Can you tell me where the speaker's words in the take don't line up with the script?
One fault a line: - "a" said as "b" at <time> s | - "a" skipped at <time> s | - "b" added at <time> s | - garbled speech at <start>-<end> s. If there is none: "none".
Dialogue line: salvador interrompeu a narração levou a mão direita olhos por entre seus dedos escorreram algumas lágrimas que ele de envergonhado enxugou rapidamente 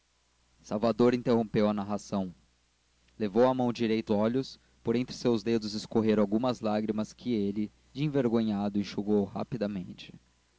none